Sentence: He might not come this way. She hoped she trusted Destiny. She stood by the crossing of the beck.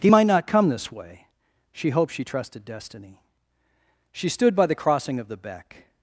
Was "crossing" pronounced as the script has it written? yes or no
yes